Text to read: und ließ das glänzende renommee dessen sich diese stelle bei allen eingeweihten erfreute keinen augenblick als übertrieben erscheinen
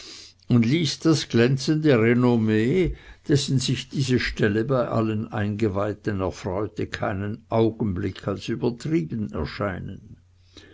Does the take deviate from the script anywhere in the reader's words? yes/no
no